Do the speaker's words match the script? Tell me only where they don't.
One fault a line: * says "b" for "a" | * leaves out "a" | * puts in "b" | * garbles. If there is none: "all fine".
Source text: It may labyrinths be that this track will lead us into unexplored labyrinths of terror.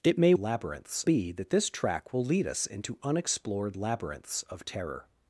all fine